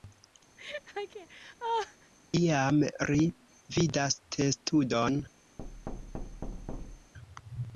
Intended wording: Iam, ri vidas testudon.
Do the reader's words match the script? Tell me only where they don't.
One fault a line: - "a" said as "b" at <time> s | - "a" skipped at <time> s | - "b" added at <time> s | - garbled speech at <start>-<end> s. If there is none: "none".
none